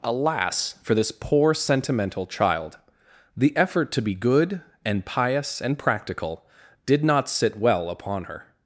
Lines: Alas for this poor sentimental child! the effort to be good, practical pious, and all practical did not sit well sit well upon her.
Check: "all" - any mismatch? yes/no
yes